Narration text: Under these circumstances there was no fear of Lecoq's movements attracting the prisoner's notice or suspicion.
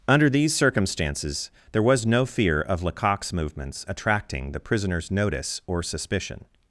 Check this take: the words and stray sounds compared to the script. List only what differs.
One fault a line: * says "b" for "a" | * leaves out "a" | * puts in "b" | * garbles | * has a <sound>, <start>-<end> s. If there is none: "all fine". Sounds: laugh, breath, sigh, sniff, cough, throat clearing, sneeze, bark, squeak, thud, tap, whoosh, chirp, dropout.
all fine